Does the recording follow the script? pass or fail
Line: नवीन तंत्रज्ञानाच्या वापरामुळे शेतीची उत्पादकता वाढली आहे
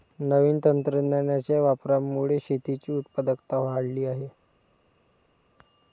pass